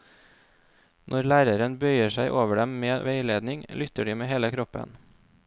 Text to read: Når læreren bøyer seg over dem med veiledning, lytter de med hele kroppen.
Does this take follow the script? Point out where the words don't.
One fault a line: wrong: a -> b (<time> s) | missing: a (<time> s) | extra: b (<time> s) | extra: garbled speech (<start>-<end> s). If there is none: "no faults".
no faults